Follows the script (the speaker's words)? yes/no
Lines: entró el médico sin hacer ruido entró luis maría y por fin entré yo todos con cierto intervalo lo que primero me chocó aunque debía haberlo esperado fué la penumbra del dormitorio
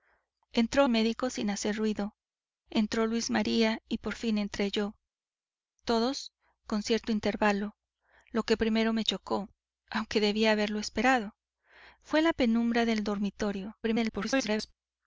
no